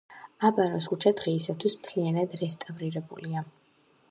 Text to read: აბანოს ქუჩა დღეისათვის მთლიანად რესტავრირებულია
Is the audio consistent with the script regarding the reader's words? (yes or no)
yes